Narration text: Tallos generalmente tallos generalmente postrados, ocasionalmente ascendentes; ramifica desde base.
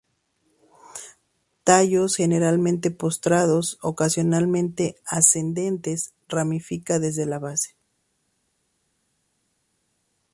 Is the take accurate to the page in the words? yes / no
no